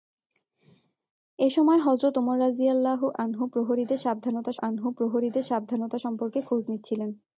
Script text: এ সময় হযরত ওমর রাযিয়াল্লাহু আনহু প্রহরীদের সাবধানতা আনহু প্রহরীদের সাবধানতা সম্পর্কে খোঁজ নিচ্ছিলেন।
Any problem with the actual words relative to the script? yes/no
no